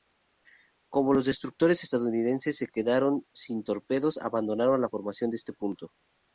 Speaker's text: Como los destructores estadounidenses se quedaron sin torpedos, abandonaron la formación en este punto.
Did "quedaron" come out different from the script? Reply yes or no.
no